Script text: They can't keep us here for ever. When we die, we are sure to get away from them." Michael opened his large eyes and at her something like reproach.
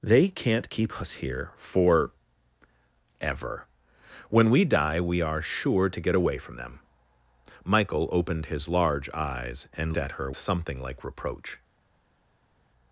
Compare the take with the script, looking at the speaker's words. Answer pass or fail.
pass